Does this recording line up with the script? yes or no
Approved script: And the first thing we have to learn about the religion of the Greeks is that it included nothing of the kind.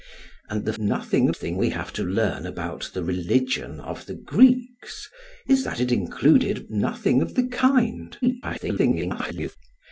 no